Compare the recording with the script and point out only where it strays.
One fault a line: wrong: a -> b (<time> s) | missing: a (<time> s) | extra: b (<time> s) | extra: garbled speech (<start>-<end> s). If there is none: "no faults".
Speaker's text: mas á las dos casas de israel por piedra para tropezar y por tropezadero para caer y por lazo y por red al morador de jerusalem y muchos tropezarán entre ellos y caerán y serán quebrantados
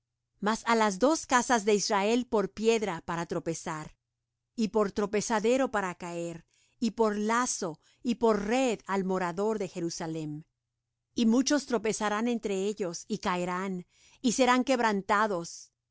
no faults